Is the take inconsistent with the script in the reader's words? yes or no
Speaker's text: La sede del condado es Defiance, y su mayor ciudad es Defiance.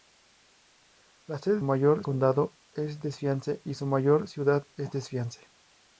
yes